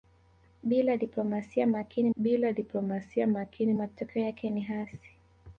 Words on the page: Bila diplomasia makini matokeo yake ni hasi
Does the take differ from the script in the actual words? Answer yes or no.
yes